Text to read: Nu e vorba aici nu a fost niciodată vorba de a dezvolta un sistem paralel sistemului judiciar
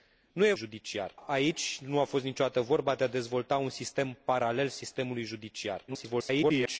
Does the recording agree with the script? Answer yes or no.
no